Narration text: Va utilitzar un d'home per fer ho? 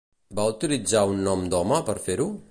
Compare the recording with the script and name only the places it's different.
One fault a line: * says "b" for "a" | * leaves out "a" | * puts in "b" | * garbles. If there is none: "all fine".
* puts in "nom"